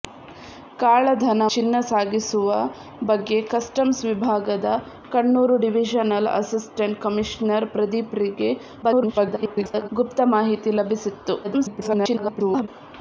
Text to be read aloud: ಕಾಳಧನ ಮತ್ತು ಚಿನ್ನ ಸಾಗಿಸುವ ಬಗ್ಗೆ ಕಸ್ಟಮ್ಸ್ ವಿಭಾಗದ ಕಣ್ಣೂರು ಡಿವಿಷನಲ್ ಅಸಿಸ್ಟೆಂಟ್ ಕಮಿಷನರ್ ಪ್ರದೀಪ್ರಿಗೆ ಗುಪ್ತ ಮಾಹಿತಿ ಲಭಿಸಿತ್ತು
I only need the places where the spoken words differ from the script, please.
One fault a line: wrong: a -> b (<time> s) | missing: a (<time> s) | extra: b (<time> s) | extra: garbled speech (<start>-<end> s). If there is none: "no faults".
missing: ಮತ್ತು (1.5 s)
extra: garbled speech (8.8-9.9 s)
extra: garbled speech (11.4-12.7 s)